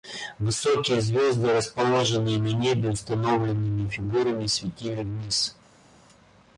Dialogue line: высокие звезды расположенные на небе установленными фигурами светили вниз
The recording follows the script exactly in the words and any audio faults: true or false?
true